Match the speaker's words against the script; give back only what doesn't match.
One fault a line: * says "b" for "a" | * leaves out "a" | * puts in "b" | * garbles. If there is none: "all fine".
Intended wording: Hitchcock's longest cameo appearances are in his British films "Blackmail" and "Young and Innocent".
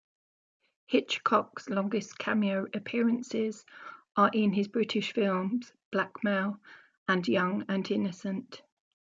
all fine